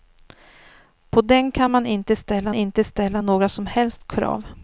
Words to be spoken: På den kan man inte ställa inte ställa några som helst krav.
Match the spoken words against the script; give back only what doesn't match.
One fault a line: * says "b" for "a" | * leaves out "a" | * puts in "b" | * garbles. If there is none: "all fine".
all fine